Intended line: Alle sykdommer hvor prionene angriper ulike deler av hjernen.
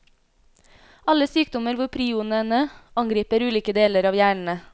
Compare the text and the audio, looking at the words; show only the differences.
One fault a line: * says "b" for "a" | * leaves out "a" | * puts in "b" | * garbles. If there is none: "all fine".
all fine